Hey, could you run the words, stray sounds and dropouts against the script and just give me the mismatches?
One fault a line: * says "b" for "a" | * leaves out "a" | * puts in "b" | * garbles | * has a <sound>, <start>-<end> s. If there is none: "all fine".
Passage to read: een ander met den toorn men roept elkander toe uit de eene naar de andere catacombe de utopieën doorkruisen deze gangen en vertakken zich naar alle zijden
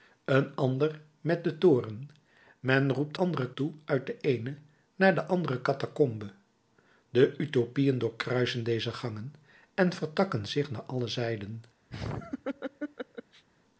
* says "andere" for "elkander"
* has a laugh, 11.9-13.4 s